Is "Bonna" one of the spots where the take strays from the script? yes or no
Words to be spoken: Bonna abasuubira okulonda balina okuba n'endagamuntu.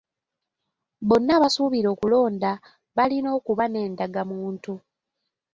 no